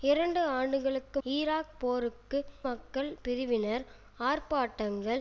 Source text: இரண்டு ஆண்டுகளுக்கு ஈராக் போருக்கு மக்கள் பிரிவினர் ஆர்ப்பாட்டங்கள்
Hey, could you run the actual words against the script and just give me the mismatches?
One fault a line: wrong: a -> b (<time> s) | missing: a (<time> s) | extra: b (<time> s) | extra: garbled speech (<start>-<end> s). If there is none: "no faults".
no faults